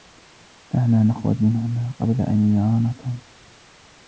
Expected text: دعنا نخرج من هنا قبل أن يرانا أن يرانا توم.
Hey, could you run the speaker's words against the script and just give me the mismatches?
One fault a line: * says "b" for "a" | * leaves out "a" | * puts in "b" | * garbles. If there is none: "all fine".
* leaves out "أن يرانا"